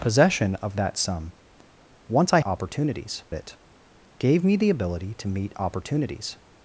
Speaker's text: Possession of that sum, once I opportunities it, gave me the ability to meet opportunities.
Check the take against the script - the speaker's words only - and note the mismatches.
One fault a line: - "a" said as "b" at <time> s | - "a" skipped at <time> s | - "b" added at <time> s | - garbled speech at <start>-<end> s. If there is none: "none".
none